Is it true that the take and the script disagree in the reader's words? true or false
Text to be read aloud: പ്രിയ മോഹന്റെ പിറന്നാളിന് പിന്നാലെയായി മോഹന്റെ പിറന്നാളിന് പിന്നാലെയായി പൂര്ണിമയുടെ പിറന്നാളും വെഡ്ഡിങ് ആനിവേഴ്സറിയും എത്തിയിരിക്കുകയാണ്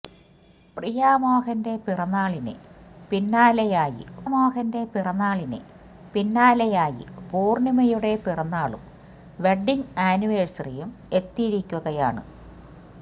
false